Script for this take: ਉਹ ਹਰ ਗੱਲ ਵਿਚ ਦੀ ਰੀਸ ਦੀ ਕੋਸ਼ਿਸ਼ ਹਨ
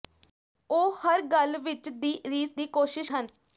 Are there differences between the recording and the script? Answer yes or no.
no